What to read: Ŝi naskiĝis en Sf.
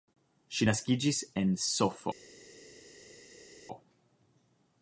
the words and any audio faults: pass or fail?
pass